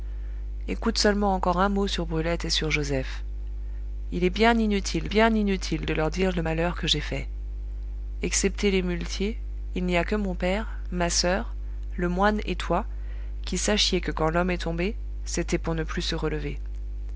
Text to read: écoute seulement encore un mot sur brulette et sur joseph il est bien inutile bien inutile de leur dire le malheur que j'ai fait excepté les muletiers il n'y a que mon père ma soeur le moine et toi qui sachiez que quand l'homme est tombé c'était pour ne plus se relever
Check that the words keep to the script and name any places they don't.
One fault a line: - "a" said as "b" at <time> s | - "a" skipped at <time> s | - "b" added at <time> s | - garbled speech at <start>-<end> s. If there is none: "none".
none